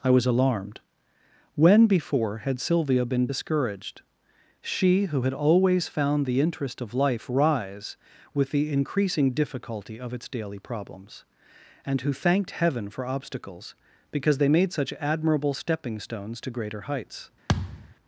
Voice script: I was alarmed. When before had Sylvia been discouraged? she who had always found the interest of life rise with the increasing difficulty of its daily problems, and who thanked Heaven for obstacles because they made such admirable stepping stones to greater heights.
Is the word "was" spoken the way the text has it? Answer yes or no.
yes